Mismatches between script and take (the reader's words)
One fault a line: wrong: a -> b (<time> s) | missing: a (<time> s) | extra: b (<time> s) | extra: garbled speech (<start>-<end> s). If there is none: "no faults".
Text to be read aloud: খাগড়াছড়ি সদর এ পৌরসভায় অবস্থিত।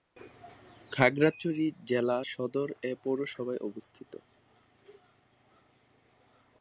extra: জেলা (1.9 s)